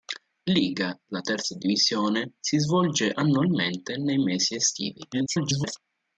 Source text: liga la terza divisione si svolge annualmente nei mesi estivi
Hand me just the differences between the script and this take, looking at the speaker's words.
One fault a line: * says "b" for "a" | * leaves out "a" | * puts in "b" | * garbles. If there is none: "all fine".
* garbles